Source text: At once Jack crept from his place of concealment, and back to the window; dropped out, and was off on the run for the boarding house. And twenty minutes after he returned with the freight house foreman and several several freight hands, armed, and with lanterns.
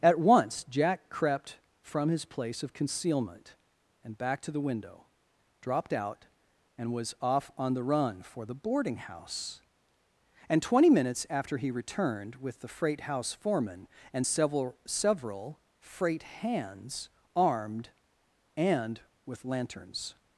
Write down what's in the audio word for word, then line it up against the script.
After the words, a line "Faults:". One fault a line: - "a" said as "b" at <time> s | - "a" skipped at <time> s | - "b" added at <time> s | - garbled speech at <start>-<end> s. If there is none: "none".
At once Jack crept from his place of concealment, and back to the window; dropped out, and was off on the run for the boarding house. And twenty minutes after he returned with the freight house foreman and several several freight hands, armed, and with lanterns.
Faults:
none